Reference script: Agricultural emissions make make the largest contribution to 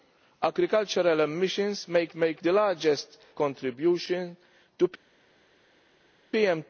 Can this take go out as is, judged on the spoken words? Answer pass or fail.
pass